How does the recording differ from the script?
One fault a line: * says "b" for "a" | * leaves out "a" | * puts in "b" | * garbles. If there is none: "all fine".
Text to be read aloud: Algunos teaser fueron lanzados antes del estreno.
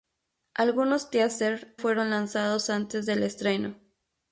all fine